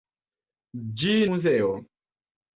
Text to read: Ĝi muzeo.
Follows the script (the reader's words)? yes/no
yes